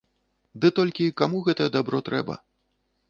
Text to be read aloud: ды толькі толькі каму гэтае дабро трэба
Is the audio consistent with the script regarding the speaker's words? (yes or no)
no